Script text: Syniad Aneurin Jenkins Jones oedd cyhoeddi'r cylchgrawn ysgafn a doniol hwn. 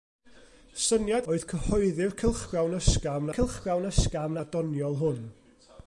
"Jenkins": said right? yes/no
no